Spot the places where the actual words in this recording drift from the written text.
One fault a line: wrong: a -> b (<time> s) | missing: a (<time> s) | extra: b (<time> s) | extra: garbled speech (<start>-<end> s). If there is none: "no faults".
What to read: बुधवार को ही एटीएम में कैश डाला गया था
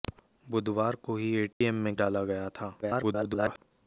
missing: कैश (1.9 s)
extra: garbled speech (2.8-3.6 s)